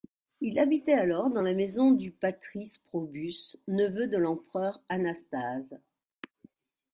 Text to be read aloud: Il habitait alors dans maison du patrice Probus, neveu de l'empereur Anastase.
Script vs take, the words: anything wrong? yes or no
yes